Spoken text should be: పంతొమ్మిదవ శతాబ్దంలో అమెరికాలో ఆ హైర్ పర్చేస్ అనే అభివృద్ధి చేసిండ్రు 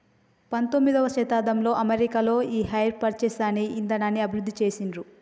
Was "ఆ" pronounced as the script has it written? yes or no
no